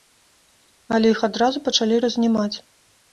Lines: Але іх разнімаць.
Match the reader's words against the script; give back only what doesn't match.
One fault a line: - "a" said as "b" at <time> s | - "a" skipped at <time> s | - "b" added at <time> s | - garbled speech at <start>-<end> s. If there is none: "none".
- "адразу пачалі" added at 1.3 s